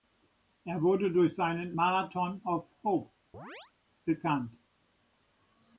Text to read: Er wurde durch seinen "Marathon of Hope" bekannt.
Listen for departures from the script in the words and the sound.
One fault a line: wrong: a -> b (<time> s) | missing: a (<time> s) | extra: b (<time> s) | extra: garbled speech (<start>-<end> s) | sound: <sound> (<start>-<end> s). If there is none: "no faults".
sound: chirp (3.3-3.7 s)